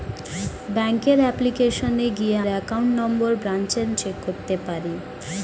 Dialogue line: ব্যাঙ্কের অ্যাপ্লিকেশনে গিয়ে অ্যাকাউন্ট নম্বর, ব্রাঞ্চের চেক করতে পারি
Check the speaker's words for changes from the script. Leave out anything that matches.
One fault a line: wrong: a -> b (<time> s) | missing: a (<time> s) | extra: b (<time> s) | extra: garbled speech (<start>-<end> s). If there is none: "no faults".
no faults